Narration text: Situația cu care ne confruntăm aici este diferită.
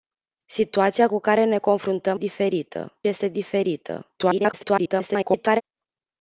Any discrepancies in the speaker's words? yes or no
yes